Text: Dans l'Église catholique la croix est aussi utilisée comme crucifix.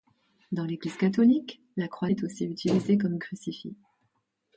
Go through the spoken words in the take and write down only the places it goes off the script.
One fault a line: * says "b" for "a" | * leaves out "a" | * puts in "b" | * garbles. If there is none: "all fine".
all fine